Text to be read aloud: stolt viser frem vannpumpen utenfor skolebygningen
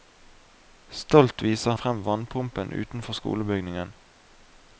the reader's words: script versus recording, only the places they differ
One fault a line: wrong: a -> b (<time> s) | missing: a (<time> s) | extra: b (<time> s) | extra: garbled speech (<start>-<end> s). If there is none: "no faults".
no faults